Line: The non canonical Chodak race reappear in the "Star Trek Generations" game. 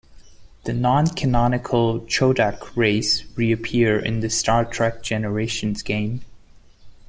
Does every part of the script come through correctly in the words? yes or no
yes